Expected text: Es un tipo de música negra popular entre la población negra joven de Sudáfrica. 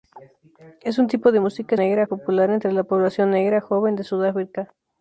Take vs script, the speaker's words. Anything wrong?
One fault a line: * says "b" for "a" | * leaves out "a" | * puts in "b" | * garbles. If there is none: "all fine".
all fine